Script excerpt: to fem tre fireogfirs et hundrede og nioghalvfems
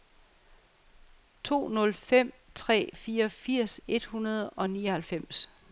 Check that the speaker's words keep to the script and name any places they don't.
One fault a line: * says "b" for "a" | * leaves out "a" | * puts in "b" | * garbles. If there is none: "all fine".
* puts in "nul"